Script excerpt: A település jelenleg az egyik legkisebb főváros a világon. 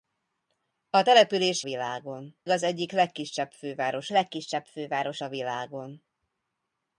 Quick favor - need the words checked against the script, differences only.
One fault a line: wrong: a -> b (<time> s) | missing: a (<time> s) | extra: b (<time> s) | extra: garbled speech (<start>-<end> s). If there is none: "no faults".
wrong: jelenleg -> világon (1.6 s)
extra: legkisebb főváros (4.1 s)